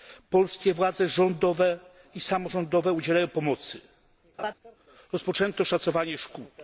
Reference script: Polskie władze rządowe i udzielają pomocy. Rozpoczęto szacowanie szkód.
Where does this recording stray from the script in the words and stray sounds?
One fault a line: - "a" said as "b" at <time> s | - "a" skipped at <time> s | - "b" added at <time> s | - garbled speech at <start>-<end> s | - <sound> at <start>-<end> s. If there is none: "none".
- "samorządowe" added at 2.2 s
- laugh at 4.4-4.5 s